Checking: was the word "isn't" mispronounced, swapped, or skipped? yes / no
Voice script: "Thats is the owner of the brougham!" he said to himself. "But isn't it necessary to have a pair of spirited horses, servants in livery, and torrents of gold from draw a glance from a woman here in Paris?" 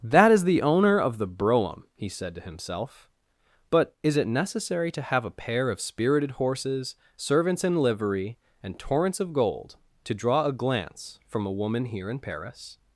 yes